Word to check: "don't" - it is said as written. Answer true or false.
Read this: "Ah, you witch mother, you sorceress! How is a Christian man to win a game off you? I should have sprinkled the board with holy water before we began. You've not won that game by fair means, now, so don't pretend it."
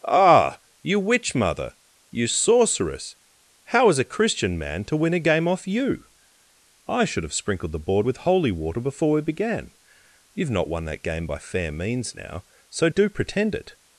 false